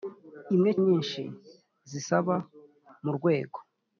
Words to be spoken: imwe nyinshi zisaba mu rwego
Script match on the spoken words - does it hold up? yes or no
yes